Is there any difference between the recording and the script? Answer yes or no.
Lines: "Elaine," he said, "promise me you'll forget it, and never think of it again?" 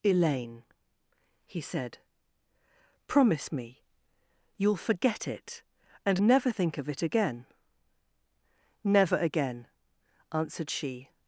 yes